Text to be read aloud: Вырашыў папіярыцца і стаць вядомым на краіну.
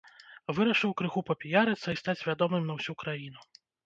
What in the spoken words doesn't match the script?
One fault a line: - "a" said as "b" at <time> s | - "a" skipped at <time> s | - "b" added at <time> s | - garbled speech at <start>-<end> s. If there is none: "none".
- "крыху" added at 1.0 s
- "ўсю" added at 2.8 s